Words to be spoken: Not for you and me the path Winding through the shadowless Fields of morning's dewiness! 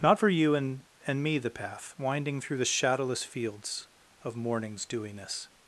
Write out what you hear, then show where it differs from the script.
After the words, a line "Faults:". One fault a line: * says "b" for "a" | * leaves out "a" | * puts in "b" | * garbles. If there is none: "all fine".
Not for you and and me the path Winding through the shadowless Fields of morning's dewiness!
Faults:
* puts in "and"